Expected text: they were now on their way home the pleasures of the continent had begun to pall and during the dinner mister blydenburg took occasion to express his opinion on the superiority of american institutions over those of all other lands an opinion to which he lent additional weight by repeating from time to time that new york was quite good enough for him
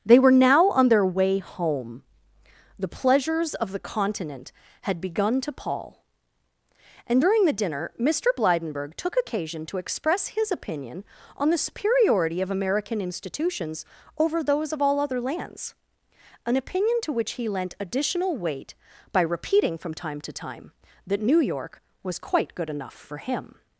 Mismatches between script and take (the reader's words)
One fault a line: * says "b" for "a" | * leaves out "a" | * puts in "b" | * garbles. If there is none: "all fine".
all fine